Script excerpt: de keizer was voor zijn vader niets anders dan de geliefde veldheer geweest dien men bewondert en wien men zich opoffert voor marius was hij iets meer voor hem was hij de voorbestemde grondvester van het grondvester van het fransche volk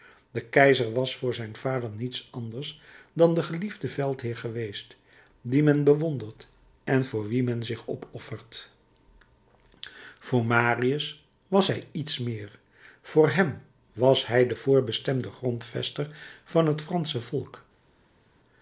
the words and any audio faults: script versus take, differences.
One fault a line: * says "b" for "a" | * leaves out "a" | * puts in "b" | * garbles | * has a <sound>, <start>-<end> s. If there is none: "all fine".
* puts in "voor"
* leaves out "grondvester van het"